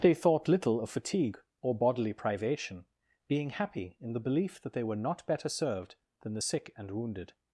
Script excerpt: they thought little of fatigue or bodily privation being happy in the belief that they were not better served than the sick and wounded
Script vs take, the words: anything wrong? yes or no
no